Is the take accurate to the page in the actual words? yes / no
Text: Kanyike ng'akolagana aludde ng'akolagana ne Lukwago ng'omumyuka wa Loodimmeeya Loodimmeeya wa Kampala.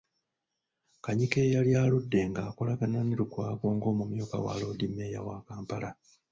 no